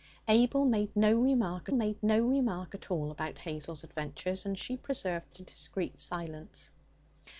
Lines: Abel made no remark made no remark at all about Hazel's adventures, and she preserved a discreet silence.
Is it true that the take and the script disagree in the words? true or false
false